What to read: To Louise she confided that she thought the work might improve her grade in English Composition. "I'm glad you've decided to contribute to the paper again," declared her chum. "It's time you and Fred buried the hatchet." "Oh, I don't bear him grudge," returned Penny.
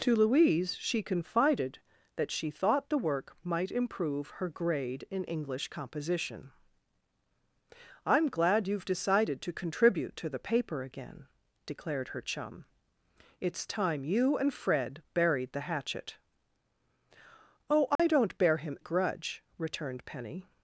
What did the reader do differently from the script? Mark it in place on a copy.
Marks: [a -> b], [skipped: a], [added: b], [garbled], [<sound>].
To Louise she confided that she thought the work might improve her grade in English Composition. "I'm glad you've decided to contribute to the paper again," declared her chum. "It's time you and Fred buried the hatchet." "Oh, I [dropout] don't bear him grudge," returned Penny.